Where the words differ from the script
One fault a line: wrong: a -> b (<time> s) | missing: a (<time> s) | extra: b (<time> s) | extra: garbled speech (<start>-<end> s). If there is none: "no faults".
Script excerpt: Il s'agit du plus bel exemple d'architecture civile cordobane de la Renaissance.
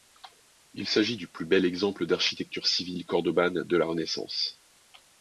no faults